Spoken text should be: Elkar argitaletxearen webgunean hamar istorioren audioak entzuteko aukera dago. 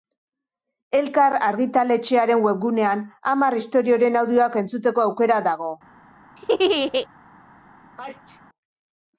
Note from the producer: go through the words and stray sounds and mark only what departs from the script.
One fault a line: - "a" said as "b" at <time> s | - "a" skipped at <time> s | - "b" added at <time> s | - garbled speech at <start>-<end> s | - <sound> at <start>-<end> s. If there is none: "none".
- laugh at 6.4-7.1 s
- sneeze at 8.0-8.4 s